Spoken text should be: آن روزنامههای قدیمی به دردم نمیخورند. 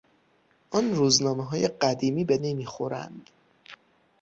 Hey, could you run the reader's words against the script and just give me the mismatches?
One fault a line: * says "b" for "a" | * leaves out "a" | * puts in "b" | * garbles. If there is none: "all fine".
* leaves out "دردم"